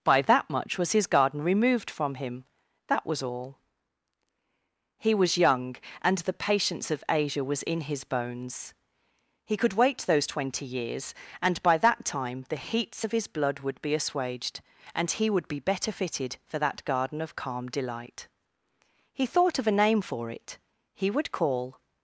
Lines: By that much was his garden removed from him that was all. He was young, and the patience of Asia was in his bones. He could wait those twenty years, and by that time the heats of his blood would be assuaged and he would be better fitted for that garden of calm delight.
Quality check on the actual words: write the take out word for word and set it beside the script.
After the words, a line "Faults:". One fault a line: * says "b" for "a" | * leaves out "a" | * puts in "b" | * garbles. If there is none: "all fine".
By that much was his garden removed from him that was all. He was young, and the patience of Asia was in his bones. He could wait those twenty years, and by that time the heats of his blood would be assuaged and he would be better fitted for that garden of calm delight. He thought of a name for it; he would call
Faults:
* puts in "He thought of a name for it he would call"